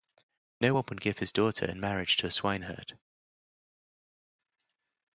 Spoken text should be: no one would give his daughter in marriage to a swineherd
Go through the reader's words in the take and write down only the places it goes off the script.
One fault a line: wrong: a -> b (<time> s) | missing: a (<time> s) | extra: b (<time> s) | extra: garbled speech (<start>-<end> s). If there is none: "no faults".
no faults